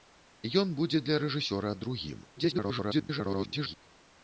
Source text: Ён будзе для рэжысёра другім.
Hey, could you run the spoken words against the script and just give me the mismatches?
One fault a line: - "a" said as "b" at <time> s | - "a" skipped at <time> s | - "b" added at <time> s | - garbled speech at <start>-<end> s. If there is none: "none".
- garbled speech at 2.4-3.8 s